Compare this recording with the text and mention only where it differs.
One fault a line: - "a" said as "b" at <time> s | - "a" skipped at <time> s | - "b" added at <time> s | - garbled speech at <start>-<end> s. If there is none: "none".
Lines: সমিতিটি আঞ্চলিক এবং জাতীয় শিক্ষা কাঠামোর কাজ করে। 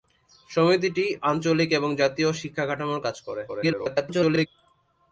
- garbled speech at 3.5-4.5 s